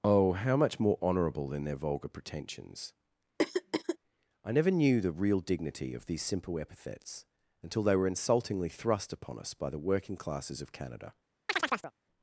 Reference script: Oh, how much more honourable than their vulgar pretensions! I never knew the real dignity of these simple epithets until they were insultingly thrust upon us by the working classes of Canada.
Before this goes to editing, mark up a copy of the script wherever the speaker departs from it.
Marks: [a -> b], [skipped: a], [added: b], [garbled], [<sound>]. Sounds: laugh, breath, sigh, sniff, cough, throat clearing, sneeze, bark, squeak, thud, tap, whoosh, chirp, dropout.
Oh, how much more honourable than their vulgar pretensions! [throat clearing] I never knew the real dignity of these simple epithets until they were insultingly thrust upon us by the working classes of Canada. [chirp]